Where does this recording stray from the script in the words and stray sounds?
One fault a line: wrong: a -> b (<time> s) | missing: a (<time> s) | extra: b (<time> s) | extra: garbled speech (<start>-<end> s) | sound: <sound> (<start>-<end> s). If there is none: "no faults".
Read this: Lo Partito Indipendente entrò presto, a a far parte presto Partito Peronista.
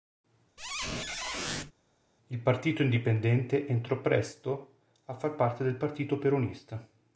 sound: squeak (0.6-1.7 s)
wrong: Lo -> Il (2.3 s)
missing: a (5.1 s)
wrong: presto -> del (5.6 s)